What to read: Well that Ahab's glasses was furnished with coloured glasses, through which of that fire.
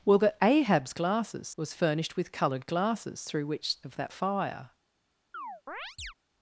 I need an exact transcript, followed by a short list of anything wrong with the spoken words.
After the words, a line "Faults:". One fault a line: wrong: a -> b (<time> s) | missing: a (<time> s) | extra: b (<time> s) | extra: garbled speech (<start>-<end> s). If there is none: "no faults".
Well that Ahab's glasses was furnished with coloured glasses, through which of that fire.
Faults:
no faults